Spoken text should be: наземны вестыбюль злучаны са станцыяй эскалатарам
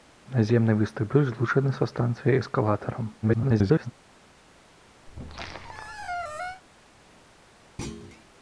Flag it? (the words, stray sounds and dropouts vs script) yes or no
yes